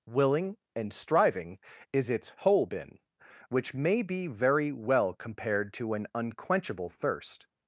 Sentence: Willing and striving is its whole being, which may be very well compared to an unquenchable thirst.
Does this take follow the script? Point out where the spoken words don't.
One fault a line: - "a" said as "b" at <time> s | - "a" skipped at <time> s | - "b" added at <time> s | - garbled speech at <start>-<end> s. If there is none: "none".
- "being" said as "been" at 2.6 s